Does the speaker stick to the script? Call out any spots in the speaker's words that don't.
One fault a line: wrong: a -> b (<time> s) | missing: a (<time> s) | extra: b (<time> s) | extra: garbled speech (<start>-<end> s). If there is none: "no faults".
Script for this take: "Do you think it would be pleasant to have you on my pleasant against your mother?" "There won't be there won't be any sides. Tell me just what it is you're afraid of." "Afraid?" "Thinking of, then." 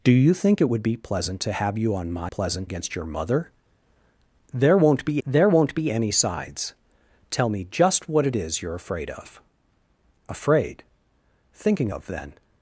no faults